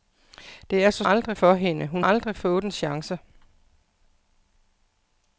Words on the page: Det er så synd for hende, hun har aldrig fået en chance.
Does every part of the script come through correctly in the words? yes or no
no